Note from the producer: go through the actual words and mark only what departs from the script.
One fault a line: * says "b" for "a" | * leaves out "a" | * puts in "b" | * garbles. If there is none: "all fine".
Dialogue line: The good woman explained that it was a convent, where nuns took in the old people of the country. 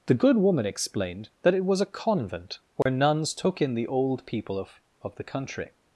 * puts in "of"